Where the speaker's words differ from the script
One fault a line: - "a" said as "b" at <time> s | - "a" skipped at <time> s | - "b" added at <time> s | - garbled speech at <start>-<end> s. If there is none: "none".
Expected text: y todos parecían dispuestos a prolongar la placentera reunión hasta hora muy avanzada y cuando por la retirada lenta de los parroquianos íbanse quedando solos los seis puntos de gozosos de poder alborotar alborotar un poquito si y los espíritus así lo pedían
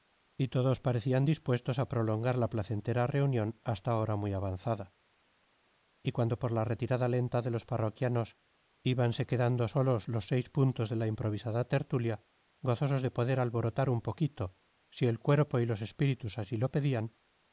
- "la improvisada tertulia" added at 10.9 s
- "alborotar" skipped at 13.9 s
- "el cuerpo" added at 15.1 s